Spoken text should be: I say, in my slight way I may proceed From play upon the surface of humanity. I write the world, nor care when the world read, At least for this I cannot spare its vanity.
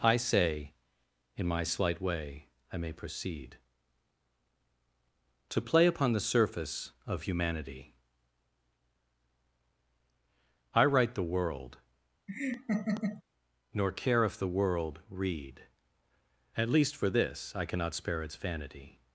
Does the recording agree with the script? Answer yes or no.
no